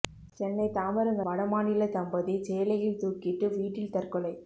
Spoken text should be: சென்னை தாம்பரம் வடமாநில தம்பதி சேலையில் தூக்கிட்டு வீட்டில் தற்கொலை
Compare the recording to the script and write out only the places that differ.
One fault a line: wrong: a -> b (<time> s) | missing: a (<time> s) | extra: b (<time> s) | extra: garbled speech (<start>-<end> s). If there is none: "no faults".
no faults